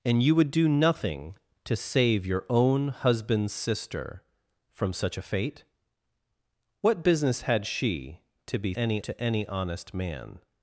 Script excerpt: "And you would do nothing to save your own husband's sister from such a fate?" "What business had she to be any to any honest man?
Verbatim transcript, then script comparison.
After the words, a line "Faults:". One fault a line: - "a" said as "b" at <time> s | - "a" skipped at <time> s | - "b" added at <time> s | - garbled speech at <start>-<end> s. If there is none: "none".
"And you would do nothing to save your own husband's sister from such a fate?" "What business had she to be any to any honest man?
Faults:
none